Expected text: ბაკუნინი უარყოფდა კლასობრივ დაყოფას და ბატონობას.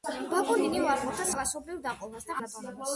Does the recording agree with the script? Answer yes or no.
yes